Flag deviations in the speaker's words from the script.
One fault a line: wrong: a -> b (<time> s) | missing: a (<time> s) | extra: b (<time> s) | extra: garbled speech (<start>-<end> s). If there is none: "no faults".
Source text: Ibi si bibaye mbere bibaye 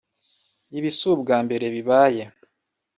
wrong: bibaye -> ubwa (1.1 s)